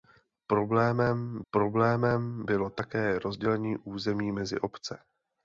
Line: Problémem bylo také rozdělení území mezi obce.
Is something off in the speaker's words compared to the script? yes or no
yes